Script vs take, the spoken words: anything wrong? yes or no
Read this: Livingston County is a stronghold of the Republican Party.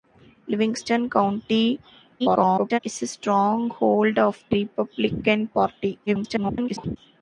yes